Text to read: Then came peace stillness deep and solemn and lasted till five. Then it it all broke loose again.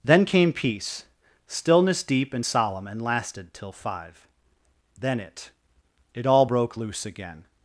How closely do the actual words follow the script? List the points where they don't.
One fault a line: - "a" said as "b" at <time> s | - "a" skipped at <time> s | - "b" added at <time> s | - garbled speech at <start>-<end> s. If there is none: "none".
none